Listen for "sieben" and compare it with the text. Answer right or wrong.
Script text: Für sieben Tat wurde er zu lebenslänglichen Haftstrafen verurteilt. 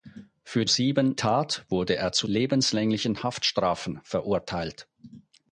right